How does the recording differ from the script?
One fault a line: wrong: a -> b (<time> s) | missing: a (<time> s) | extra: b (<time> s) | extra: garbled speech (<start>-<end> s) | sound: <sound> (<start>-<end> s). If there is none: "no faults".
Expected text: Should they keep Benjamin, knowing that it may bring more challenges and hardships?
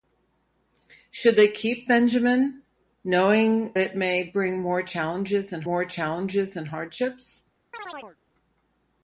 missing: that (3.8 s)
extra: more challenges and (5.6 s)
sound: chirp (7.7-8.2 s)